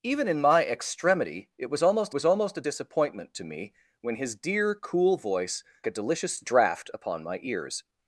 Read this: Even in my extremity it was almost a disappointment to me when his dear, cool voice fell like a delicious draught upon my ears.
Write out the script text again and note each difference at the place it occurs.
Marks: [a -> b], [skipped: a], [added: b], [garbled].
Even in my extremity it was almost [added: was almost] a disappointment to me when his dear, cool voice [skipped: fell like] a delicious draught upon my ears.